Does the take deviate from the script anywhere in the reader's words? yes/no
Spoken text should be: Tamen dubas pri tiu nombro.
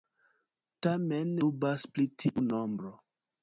no